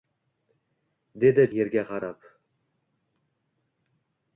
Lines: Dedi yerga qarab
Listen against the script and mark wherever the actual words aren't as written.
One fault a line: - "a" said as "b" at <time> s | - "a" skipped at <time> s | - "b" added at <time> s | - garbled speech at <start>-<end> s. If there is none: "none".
none